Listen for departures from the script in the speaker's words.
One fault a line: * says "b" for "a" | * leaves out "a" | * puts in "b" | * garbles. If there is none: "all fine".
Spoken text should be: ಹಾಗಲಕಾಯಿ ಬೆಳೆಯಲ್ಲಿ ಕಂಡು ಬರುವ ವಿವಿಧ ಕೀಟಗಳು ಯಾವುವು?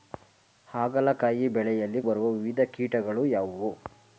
* leaves out "ಕಂಡು"